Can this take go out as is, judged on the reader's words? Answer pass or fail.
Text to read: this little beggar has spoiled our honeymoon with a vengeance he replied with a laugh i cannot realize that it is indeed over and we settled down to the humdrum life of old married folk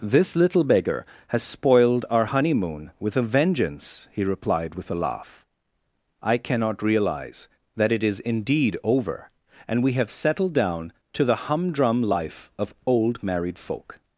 fail